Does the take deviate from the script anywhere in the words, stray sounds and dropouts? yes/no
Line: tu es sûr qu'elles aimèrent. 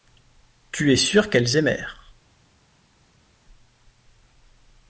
no